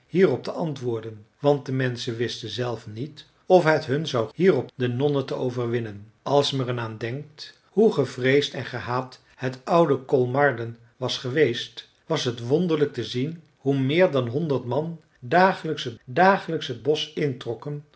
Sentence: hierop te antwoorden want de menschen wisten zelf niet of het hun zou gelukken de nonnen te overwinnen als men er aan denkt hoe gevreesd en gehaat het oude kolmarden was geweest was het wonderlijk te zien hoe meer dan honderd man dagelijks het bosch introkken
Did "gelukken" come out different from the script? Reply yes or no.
yes